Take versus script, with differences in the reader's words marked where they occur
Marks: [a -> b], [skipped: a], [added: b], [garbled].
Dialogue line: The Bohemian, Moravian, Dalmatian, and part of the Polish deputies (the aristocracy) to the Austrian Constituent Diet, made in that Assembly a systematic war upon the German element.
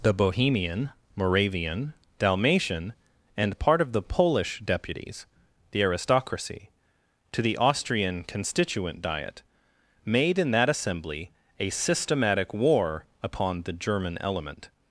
The Bohemian, Moravian, Dalmatian, and part of the Polish deputies (the aristocracy) to the Austrian Constituent Diet, made in that Assembly a systematic war upon the German element.